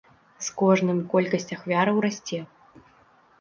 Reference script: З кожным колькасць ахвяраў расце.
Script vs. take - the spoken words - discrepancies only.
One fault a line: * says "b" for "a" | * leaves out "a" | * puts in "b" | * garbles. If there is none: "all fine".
all fine